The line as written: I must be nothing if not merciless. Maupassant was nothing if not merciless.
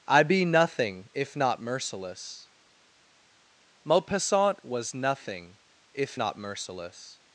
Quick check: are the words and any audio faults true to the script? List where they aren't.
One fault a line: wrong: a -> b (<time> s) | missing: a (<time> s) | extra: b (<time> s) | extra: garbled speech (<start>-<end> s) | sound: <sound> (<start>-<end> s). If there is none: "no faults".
missing: must (0.2 s)